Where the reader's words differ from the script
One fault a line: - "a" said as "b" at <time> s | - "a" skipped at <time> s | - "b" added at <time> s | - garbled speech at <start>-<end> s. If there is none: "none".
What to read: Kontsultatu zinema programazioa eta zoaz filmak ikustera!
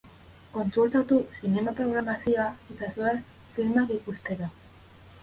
none